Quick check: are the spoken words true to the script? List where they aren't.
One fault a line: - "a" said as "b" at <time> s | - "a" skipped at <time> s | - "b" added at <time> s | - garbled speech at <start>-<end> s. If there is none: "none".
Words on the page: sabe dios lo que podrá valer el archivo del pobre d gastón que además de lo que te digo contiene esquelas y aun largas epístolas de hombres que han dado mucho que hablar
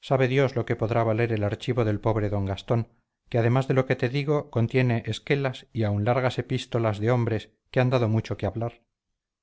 none